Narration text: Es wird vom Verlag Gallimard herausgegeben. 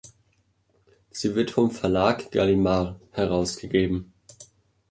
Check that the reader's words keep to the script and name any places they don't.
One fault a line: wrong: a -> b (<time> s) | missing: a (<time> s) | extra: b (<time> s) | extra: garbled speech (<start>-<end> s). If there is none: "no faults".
wrong: Es -> Sie (1.1 s)